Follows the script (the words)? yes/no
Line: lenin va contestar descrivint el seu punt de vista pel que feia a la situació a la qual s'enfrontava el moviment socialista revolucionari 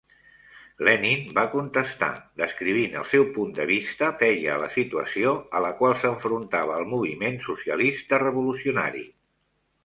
no